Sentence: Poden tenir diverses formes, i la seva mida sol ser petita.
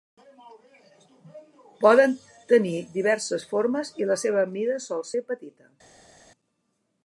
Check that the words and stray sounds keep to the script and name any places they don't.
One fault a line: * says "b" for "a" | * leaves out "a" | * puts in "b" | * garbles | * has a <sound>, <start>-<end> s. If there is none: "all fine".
all fine